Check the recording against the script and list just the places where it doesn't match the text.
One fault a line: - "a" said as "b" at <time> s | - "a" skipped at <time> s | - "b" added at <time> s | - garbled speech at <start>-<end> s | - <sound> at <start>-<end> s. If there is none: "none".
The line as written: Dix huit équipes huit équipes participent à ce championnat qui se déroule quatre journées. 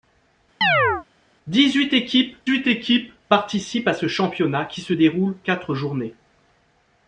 - chirp at 0.6-1.0 s